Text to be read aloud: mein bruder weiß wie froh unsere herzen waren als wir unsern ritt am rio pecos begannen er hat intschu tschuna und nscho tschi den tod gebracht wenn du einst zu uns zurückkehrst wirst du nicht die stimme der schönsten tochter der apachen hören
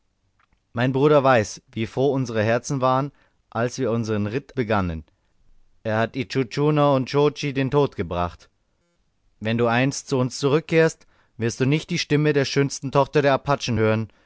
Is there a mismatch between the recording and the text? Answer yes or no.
yes